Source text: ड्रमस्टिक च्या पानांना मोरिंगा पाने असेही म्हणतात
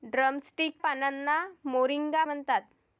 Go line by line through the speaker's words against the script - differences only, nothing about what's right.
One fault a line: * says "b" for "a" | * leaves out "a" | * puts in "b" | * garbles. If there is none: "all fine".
* leaves out "च्या"
* leaves out "पाने असेही"